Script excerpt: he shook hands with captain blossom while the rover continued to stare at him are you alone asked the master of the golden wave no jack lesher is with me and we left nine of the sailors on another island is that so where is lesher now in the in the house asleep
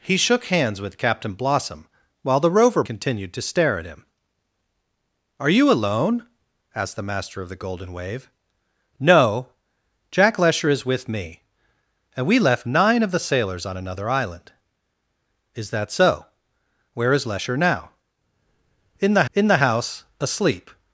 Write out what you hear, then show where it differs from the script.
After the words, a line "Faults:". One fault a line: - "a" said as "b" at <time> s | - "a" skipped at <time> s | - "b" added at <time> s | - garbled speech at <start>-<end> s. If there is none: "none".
he shook hands with captain blossom while the rover continued to stare at him are you alone asked the master of the golden wave no jack lesher is with me and we left nine of the sailors on another island is that so where is lesher now in the in the house asleep
Faults:
none